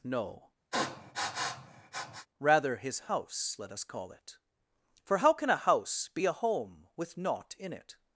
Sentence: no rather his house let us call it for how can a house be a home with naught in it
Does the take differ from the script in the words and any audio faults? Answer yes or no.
yes